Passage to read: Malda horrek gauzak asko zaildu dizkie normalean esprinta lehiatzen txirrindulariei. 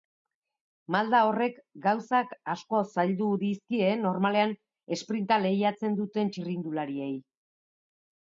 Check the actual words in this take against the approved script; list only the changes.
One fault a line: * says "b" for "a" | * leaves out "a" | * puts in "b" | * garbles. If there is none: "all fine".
* puts in "duten"